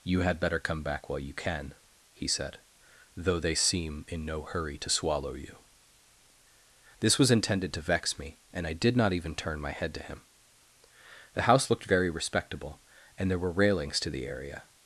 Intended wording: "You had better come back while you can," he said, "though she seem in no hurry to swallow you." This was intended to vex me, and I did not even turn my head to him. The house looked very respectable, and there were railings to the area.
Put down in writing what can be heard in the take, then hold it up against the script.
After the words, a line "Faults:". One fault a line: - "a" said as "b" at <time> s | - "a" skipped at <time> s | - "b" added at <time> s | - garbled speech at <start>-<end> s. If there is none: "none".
"You had better come back while you can," he said, "though they seem in no hurry to swallow you." This was intended to vex me, and I did not even turn my head to him. The house looked very respectable, and there were railings to the area.
Faults:
- "she" said as "they" at 3.4 s